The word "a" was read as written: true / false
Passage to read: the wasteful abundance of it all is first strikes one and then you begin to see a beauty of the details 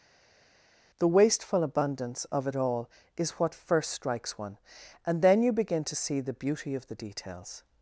false